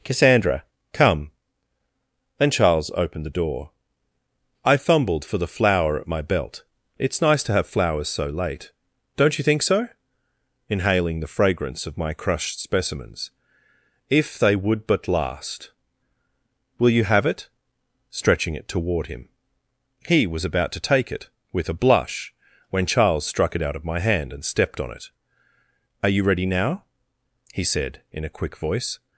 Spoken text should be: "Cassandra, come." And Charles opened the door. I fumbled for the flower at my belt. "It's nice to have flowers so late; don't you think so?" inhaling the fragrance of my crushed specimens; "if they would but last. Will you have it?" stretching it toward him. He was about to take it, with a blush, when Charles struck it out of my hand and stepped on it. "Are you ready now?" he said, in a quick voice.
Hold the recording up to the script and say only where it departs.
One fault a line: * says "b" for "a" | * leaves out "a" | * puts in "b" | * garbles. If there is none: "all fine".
* says "Then" for "And"